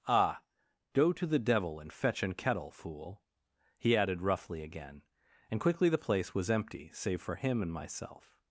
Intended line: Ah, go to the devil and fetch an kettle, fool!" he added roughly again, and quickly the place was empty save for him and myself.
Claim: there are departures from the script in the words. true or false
false